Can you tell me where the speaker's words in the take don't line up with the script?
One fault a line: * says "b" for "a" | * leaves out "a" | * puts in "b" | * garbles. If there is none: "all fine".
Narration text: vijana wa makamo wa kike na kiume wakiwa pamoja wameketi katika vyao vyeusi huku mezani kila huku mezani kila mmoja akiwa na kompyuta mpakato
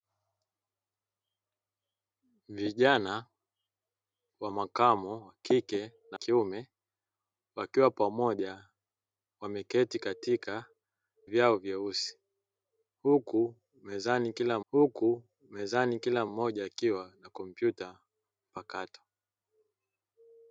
all fine